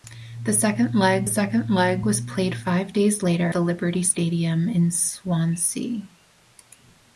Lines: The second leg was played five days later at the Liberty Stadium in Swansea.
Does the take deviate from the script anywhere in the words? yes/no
yes